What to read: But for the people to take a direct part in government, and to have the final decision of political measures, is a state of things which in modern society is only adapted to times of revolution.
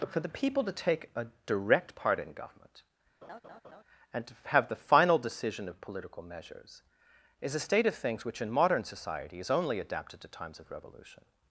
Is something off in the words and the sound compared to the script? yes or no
yes